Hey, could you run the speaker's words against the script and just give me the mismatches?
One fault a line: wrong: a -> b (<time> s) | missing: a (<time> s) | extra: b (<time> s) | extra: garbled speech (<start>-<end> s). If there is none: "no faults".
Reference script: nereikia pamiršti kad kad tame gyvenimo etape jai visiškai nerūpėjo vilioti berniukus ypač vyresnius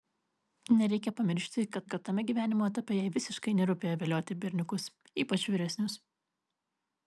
no faults